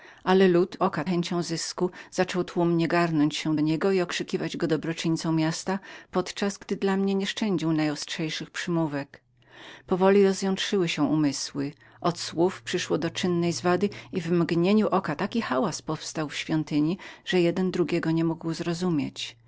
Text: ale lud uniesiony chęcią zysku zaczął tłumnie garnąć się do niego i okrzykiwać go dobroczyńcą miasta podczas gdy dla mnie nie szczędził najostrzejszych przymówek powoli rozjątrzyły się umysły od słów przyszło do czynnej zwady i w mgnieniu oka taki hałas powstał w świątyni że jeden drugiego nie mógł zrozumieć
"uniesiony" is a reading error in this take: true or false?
true